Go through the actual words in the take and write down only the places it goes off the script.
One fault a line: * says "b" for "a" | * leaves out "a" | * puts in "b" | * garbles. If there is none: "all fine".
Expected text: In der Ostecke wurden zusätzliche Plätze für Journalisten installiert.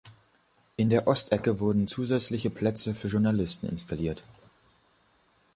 all fine